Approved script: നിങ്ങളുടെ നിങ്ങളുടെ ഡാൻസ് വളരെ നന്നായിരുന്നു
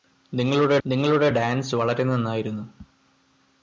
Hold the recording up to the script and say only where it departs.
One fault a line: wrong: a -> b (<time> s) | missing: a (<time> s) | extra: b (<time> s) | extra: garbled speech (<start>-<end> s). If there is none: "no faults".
no faults